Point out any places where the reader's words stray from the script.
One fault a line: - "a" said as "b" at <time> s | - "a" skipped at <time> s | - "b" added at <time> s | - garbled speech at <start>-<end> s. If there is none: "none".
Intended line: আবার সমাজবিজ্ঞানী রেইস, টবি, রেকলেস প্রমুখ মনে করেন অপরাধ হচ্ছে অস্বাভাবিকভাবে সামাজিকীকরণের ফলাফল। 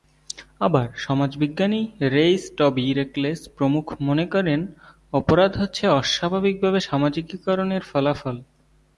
none